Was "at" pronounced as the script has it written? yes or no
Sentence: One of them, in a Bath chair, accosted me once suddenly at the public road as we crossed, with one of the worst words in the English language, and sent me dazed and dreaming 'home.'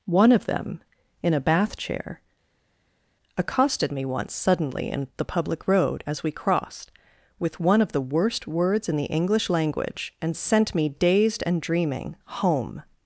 no